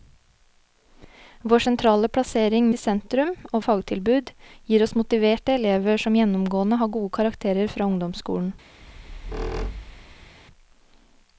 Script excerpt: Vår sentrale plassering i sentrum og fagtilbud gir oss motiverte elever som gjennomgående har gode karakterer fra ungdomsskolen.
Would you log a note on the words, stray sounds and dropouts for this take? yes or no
yes